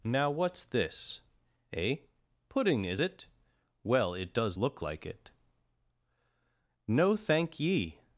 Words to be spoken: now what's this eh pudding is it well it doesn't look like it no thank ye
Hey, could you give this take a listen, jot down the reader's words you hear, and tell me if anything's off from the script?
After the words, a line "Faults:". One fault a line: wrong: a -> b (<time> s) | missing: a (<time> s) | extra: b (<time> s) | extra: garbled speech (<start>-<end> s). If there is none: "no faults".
now what's this eh pudding is it well it does look like it no thank ye
Faults:
wrong: doesn't -> does (4.3 s)